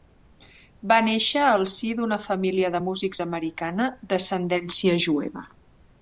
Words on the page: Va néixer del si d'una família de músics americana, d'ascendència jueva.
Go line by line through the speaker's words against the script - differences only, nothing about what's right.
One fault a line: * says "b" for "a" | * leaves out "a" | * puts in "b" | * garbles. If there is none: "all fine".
* says "al" for "del"